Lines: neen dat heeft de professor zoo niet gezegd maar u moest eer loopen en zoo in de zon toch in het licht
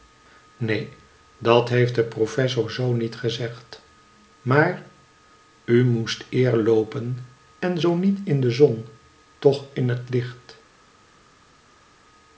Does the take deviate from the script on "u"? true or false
false